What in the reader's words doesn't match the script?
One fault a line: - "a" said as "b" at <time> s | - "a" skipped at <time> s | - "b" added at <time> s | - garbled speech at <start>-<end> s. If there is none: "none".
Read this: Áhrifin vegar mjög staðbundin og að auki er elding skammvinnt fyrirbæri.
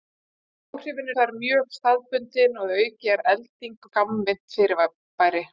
none